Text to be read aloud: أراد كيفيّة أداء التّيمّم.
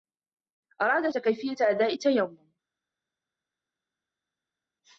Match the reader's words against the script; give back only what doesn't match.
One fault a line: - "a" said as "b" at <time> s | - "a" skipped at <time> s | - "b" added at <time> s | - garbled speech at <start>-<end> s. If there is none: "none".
none